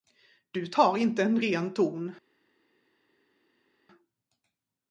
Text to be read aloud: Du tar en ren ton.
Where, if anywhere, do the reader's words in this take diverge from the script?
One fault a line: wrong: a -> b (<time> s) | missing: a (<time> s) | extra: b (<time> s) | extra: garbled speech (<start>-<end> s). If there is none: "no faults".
extra: inte (1.0 s)